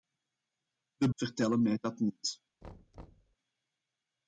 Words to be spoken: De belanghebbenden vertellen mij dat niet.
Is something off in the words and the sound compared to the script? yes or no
yes